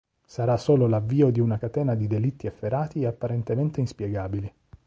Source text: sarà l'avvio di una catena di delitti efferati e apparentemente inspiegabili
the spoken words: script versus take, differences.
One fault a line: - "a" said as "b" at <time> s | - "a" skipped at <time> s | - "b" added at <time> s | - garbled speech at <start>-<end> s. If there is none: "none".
- "solo" added at 0.6 s